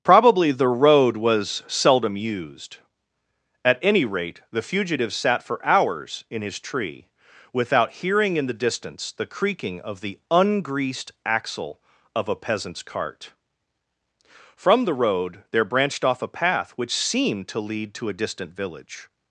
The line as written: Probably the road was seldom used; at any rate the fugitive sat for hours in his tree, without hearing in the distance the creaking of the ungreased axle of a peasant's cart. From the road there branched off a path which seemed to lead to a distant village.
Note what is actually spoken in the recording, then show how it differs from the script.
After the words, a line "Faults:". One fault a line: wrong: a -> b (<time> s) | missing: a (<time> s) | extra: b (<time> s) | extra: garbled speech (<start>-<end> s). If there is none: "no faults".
Probably the road was seldom used; at any rate the fugitive sat for hours in his tree, without hearing in the distance the creaking of the ungreased axle of a peasant's cart. From the road there branched off a path which seemed to lead to a distant village.
Faults:
no faults